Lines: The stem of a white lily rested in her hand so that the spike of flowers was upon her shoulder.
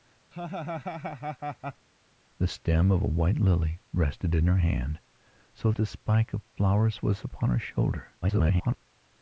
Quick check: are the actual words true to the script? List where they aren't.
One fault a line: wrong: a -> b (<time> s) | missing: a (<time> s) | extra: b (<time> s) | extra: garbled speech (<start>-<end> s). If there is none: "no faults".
missing: that (5.7 s)
extra: garbled speech (8.2-8.9 s)